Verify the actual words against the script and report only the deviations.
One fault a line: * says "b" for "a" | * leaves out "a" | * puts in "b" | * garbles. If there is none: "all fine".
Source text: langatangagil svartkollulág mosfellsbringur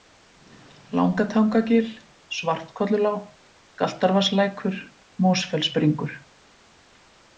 * puts in "galtarvatnslækur"